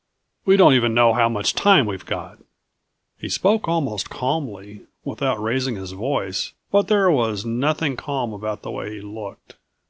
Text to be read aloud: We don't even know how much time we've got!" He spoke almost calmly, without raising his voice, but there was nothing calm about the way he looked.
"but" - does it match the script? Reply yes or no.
yes